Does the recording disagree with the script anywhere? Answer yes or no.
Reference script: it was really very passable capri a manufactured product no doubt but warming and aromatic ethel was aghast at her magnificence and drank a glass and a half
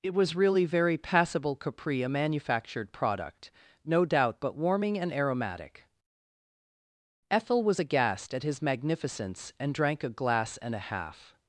yes